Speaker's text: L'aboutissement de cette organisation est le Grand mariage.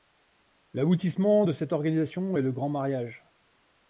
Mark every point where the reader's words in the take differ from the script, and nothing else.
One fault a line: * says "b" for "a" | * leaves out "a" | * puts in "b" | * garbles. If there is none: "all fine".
all fine